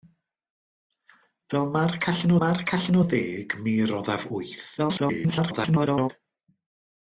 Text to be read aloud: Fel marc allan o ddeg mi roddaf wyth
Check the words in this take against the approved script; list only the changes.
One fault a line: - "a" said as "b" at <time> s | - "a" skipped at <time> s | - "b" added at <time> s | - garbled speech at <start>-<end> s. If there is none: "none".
- "marc allan" added at 2.4 s
- garbled speech at 4.8-6.1 s